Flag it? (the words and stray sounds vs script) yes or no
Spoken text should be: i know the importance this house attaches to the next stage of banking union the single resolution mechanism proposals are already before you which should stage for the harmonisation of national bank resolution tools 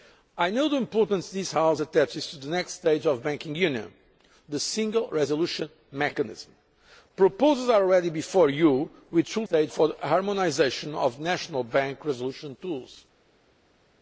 no